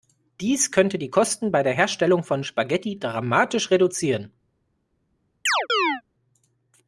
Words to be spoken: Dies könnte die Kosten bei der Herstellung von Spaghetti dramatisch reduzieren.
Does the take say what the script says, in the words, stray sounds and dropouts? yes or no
no